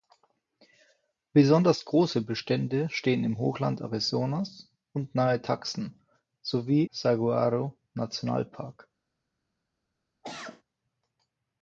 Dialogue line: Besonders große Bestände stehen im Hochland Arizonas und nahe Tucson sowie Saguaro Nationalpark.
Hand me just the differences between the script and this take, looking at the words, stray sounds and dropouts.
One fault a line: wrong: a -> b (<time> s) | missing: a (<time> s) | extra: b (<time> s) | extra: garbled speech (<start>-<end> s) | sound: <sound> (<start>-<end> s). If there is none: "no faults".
sound: cough (10.2-10.6 s)